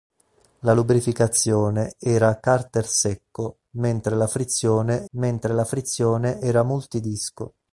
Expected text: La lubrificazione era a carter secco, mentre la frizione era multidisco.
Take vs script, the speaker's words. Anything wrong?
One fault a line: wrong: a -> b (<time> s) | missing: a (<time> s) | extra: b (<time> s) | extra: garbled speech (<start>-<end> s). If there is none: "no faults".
extra: mentre la frizione (5.1 s)